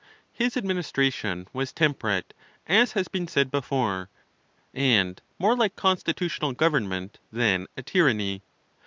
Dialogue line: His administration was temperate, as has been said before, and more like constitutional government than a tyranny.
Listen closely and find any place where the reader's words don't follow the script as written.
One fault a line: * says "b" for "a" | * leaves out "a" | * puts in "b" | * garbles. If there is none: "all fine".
all fine